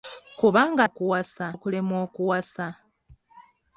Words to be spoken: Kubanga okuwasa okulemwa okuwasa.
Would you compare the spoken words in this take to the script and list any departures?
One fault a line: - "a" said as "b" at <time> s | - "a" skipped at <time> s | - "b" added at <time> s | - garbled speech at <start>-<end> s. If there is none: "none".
none